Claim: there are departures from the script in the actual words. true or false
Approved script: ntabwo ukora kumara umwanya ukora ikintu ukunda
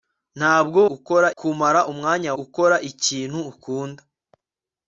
false